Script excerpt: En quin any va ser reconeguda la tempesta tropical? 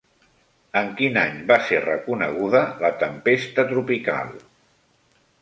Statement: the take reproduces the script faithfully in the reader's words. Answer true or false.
true